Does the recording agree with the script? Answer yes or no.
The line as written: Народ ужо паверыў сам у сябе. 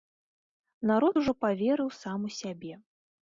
yes